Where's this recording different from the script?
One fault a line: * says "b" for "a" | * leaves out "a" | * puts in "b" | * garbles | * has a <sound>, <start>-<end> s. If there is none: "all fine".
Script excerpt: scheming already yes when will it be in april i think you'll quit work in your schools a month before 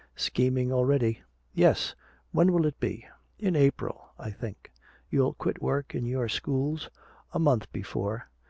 all fine